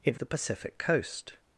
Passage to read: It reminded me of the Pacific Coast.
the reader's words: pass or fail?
fail